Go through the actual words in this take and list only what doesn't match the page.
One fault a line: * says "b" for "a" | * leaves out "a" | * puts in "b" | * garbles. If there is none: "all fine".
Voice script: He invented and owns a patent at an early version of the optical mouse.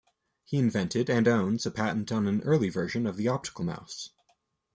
* says "on" for "at"